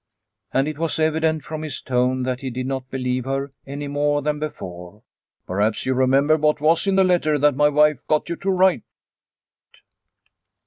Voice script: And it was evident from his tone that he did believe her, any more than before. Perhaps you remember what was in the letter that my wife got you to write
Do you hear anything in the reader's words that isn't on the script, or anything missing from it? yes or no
yes